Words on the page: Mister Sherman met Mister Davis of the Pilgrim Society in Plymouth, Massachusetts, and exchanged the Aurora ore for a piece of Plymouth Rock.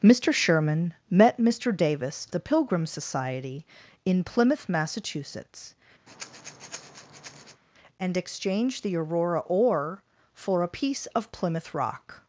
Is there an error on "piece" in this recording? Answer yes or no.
no